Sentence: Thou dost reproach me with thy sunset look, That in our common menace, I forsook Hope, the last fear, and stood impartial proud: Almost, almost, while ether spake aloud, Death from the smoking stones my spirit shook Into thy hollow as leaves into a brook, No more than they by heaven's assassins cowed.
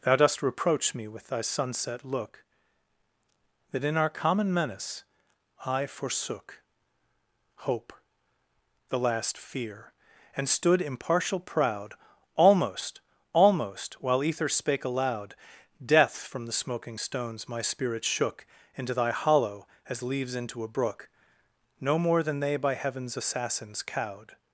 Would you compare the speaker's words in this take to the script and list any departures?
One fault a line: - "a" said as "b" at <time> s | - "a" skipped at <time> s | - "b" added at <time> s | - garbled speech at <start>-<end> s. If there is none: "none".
none